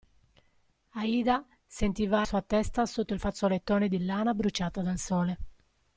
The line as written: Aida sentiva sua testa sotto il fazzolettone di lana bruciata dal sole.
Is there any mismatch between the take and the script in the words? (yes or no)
no